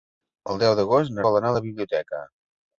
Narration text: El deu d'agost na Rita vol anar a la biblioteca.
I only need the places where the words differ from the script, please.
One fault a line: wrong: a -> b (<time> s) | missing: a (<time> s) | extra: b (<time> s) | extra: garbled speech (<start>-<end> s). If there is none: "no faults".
missing: Rita (1.2 s)